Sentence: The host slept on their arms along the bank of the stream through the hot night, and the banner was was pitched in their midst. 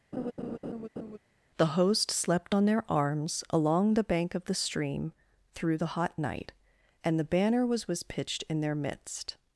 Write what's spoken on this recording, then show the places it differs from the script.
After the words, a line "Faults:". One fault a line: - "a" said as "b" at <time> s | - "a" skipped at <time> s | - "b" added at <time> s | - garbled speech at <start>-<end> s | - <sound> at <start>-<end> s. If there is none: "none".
The host slept on their arms along the bank of the stream through the hot night, and the banner was was pitched in their midst.
Faults:
- laugh at 0.1-1.2 s